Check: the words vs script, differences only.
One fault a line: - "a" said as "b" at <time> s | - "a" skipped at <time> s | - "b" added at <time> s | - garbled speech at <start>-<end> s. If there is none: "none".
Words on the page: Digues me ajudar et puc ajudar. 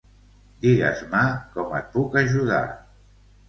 - "ajudar" said as "com" at 1.6 s